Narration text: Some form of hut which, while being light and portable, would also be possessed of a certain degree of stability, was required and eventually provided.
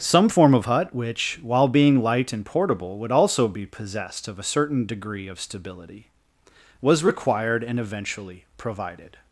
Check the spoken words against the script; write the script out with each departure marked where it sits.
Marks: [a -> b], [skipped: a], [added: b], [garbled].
Some form of hut which, while being light and portable, would also be possessed of a certain degree of stability, was required and eventually provided.